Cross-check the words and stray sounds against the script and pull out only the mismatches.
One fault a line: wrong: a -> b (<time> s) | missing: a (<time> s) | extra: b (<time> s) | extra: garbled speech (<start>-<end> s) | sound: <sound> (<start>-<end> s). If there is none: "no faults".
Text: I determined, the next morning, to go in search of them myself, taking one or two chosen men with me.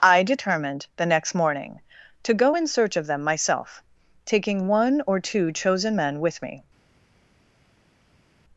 no faults